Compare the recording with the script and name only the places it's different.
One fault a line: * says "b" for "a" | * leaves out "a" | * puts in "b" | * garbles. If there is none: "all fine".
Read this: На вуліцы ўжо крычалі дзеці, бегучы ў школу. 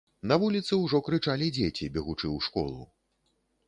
all fine